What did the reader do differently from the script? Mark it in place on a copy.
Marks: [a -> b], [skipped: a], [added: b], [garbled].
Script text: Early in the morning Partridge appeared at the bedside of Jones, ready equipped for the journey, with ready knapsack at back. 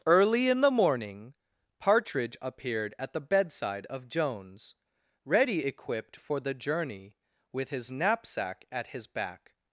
Early in the morning Partridge appeared at the bedside of Jones, ready equipped for the journey, with [ready -> his] knapsack at [added: his] back.